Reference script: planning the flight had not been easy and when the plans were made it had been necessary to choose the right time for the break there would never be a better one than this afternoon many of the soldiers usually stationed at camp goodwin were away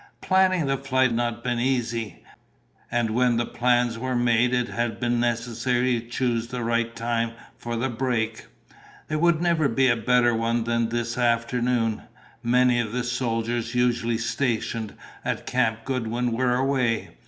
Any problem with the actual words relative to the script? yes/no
yes